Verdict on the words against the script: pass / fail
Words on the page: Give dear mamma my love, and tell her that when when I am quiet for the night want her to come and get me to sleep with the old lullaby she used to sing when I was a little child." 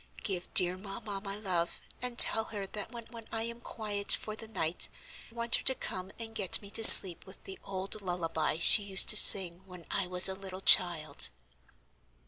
pass